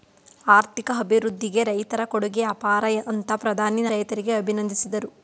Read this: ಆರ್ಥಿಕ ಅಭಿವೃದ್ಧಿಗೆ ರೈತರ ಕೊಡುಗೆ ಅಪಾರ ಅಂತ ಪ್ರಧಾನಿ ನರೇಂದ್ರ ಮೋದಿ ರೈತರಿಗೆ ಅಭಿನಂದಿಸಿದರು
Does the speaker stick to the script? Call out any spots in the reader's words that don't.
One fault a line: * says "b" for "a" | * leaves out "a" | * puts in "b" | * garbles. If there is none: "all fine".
* leaves out "ನರೇಂದ್ರ ಮೋದಿ"